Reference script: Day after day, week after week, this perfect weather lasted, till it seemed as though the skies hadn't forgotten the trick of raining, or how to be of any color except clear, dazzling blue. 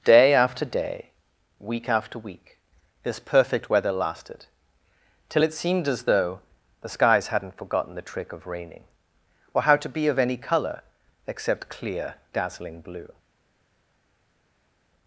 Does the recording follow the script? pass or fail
pass